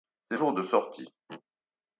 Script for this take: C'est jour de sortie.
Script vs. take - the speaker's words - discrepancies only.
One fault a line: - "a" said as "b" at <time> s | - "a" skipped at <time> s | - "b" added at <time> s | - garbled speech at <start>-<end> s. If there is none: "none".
none